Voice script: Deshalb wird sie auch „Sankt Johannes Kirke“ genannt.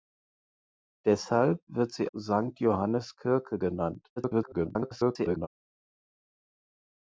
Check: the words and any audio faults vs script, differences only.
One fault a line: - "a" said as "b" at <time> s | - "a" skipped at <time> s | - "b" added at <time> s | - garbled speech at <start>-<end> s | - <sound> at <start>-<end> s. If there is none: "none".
- "auch" skipped at 2.1 s
- garbled speech at 4.2-5.5 s